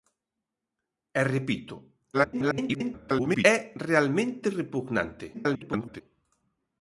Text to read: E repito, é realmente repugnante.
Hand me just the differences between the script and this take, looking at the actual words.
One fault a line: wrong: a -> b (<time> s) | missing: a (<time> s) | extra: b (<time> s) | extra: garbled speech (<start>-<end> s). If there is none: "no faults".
extra: garbled speech (2.1-3.5 s)
extra: garbled speech (5.3-6.0 s)